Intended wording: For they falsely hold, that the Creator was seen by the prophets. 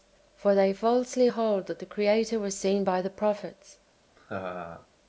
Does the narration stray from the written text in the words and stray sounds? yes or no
yes